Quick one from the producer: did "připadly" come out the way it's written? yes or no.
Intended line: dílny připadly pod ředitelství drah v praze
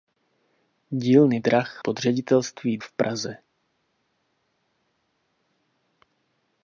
no